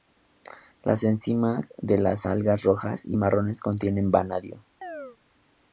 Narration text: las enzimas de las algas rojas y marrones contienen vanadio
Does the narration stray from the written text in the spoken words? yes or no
no